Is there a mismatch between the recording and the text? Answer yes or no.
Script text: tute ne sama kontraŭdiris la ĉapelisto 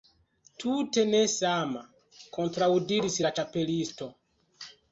no